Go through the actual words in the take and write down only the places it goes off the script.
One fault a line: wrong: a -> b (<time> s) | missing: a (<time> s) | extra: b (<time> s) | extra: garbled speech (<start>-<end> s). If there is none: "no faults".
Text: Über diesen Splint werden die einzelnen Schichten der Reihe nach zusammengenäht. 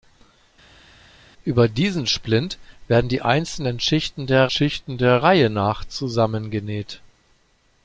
extra: Schichten der (4.5 s)